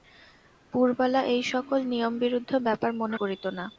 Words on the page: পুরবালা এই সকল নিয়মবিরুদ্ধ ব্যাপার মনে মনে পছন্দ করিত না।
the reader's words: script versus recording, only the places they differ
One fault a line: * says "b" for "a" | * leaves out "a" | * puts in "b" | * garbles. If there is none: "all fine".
* leaves out "মনে পছন্দ"